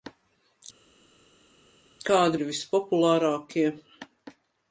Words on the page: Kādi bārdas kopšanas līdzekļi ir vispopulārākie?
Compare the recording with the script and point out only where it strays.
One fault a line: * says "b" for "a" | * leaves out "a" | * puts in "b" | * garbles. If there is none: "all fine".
* leaves out "bārdas kopšanas līdzekļi"